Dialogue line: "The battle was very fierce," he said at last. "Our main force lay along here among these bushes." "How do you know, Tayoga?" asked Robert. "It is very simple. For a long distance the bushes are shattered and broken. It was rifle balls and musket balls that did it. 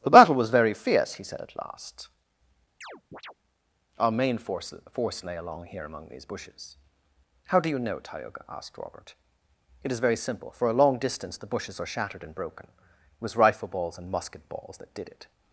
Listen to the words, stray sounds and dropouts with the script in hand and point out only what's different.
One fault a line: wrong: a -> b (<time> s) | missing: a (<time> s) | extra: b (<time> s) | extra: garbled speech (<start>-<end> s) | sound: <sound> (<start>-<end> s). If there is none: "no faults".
sound: chirp (2.8-3.3 s)
extra: force (4.9 s)